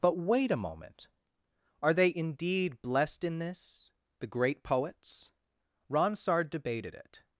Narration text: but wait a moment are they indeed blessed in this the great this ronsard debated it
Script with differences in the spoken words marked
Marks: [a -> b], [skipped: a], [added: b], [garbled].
but wait a moment are they indeed blessed in this the great [this -> poets] ronsard debated it